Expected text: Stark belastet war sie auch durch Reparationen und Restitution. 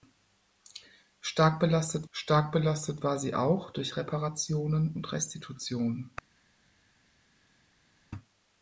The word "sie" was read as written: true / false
true